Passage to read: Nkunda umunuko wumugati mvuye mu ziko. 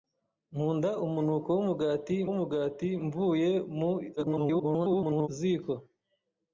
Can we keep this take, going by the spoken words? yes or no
no